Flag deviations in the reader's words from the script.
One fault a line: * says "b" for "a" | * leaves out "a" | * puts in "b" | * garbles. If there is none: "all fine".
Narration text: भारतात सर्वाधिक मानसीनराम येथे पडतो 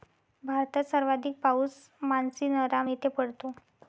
* puts in "पाऊस"